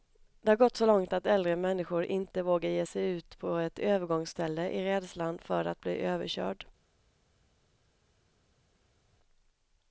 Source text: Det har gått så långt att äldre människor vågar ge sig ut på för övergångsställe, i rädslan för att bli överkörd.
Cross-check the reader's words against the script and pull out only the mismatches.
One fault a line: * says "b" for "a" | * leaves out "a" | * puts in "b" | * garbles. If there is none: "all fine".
* puts in "inte"
* says "ett" for "för"